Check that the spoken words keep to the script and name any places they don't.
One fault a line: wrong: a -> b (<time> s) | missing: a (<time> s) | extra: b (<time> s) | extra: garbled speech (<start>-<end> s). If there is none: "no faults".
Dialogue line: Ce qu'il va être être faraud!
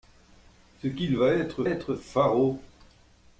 no faults